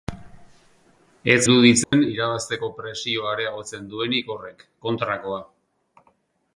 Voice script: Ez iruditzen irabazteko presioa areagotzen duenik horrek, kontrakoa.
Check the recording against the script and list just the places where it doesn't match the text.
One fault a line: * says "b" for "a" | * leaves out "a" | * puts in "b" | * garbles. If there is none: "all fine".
all fine